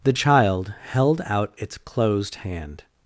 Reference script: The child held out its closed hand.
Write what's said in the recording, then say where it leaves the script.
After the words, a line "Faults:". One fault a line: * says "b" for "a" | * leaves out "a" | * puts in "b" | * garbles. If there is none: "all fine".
The child held out its closed hand.
Faults:
all fine